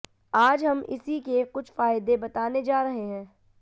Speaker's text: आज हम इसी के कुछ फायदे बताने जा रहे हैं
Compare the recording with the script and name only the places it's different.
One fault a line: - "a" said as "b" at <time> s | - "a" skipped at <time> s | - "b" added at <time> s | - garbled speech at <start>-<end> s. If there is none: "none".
none